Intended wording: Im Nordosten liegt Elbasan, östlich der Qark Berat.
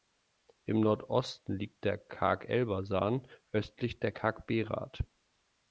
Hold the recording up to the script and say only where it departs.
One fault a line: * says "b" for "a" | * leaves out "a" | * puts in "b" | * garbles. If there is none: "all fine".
* puts in "der Qark"